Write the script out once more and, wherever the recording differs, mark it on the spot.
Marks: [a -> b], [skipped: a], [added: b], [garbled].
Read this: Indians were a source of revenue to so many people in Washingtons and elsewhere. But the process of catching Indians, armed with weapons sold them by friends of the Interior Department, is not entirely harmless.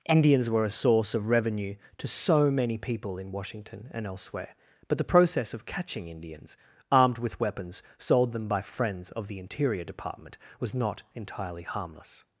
Indians were a source of revenue to so many people in [Washingtons -> Washington] and elsewhere. But the process of catching Indians, armed with weapons sold them by friends of the Interior Department, [is -> was] not entirely harmless.